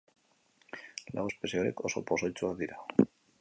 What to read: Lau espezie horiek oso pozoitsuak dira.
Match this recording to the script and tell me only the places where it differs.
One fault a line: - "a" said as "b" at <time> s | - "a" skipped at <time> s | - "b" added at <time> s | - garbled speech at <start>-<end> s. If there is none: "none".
none